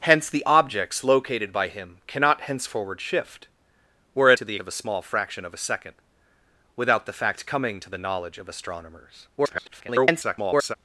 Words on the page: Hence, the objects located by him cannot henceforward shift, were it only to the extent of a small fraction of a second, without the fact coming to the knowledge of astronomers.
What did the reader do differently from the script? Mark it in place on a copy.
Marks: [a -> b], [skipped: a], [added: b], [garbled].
Hence, the objects located by him cannot henceforward shift, were it [skipped: only] to the [skipped: extent] of a small fraction of a second, without the fact coming to the knowledge of astronomers. [garbled]